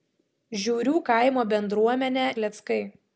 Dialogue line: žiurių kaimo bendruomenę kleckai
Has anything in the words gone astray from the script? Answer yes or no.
no